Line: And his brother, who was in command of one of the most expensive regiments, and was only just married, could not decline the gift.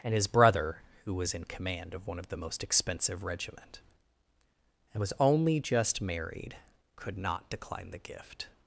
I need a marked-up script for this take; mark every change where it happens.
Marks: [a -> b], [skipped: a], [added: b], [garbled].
And his brother, who was in command of one of the most expensive [regiments, -> regiment] and was only just married, could not decline the gift.